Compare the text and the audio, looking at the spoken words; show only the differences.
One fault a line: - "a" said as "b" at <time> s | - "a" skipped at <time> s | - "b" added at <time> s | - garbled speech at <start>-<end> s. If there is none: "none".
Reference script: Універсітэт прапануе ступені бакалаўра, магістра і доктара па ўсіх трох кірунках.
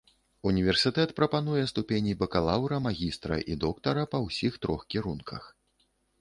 none